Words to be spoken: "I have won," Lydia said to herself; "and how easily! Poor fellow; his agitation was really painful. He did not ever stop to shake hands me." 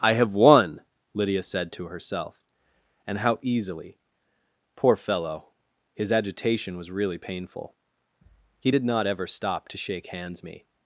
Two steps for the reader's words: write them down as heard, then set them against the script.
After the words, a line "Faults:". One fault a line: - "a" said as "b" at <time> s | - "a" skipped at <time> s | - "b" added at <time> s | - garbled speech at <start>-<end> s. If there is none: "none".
"I have won," Lydia said to herself; "and how easily! Poor fellow; his agitation was really painful. He did not ever stop to shake hands me."
Faults:
none